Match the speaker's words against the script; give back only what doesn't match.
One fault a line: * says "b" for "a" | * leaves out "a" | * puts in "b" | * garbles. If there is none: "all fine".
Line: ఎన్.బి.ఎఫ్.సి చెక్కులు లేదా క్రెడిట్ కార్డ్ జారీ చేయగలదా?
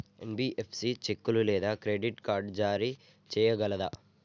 all fine